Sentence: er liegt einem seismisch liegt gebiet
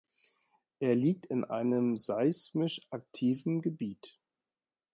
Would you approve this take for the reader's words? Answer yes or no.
no